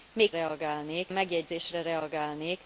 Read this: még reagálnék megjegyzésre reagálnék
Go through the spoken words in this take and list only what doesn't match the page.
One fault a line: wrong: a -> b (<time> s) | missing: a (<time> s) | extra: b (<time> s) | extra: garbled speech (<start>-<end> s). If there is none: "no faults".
no faults